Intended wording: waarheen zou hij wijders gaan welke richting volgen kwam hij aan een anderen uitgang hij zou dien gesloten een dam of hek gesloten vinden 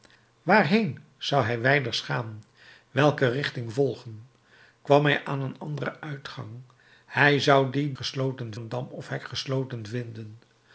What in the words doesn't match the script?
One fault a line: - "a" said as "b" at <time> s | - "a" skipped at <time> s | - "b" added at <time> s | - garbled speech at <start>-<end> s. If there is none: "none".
none